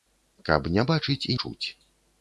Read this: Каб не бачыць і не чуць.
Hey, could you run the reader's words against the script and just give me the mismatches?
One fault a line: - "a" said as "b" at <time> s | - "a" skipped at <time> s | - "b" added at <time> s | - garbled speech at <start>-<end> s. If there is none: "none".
- "не" skipped at 1.4 s